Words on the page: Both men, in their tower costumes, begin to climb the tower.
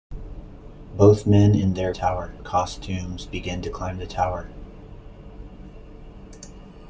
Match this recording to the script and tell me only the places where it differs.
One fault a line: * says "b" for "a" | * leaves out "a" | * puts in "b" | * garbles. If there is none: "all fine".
all fine